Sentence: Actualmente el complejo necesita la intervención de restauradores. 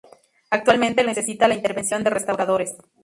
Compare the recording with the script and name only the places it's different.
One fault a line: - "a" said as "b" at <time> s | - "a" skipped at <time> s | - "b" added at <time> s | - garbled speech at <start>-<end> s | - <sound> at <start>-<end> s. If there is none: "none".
- "complejo" skipped at 1.1 s